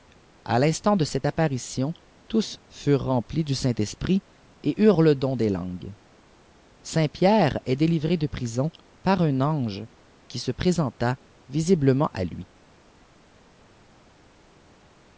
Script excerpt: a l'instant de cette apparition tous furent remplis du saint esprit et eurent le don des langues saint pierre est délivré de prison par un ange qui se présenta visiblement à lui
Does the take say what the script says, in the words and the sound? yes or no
yes